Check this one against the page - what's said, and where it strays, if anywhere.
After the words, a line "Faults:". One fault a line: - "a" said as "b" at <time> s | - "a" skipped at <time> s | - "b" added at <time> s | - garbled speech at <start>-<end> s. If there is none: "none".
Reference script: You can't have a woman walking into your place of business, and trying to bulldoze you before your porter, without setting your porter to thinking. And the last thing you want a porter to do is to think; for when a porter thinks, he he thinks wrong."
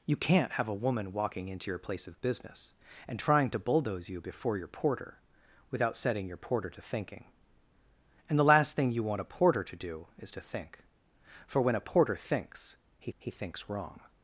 You can't have a woman walking into your place of business, and trying to bulldoze you before your porter, without setting your porter to thinking. And the last thing you want a porter to do is to think; for when a porter thinks, he he thinks wrong."
Faults:
none